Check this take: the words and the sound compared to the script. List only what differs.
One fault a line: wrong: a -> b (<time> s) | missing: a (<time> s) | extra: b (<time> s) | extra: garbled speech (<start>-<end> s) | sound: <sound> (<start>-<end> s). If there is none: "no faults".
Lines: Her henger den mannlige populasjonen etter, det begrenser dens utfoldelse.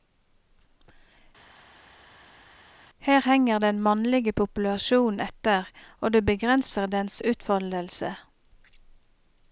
extra: og (6.0 s)